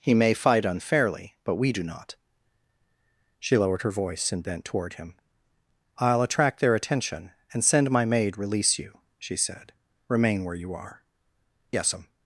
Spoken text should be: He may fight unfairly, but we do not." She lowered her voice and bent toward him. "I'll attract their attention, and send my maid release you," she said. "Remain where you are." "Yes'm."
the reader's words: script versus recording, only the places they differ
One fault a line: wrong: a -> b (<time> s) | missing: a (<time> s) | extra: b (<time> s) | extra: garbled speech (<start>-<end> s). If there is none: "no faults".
no faults